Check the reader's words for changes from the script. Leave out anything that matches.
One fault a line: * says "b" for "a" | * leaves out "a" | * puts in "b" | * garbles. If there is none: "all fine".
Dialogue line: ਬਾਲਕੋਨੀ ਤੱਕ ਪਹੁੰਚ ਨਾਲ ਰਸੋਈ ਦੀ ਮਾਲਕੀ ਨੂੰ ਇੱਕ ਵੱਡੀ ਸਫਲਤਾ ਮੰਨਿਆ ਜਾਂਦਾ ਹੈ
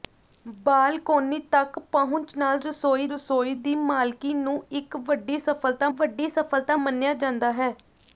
* puts in "ਰਸੋਈ"
* puts in "ਵੱਡੀ ਸਫਲਤਾ"